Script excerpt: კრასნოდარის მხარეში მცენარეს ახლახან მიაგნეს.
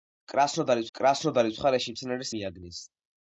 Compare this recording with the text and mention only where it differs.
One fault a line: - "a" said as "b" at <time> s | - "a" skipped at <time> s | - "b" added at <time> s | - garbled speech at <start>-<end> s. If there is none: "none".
- "კრასნოდარის" added at 1.0 s
- "ახლახან" skipped at 2.3 s